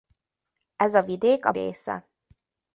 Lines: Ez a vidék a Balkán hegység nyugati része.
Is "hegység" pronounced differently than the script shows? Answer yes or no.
yes